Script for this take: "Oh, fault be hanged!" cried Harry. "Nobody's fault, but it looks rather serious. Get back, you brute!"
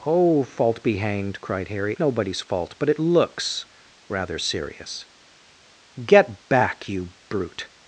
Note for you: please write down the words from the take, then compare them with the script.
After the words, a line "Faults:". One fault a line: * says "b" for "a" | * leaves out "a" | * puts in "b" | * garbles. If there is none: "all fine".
"Oh, fault be hanged!" cried Harry. "Nobody's fault, but it looks rather serious. Get back, you brute!"
Faults:
all fine